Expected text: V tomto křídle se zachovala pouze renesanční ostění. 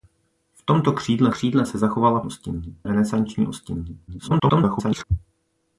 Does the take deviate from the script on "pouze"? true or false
true